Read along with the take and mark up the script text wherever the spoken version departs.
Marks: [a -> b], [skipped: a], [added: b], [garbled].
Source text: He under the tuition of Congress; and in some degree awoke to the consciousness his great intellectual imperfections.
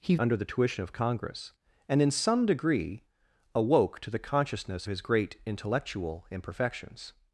He under the tuition of Congress; and in some degree awoke to the consciousness his great intellectual imperfections.